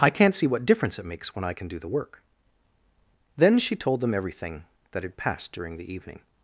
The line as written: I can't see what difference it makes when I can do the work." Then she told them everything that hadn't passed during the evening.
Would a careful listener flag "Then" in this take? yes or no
no